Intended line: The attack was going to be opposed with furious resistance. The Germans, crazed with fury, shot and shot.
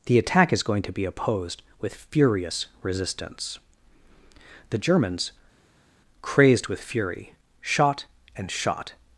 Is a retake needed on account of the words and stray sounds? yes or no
yes